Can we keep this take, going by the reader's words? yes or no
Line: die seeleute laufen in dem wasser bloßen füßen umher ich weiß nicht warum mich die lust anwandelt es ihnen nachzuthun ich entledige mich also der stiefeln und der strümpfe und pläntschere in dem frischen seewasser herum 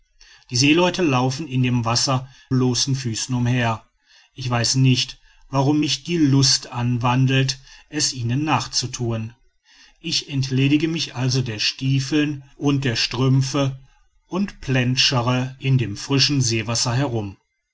yes